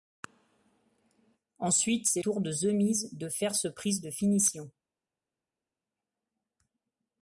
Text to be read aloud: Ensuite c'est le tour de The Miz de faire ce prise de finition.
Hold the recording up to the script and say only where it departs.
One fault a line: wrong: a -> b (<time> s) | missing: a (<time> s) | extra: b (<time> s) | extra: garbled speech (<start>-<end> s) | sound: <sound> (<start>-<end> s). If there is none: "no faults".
missing: le (2.2 s)